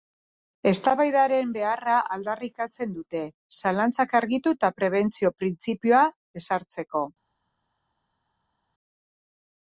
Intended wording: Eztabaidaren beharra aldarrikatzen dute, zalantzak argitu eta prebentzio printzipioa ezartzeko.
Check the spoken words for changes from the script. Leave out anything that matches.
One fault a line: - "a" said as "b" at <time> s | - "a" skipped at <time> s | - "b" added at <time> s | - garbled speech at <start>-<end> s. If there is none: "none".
none